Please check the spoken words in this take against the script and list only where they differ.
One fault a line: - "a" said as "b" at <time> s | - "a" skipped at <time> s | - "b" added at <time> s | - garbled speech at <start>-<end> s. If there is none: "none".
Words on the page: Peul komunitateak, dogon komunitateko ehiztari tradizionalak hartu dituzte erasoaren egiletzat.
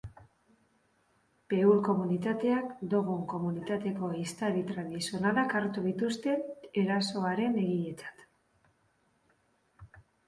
none